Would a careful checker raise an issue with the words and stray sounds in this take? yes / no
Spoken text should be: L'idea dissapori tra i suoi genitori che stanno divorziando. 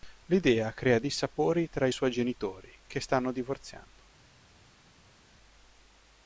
yes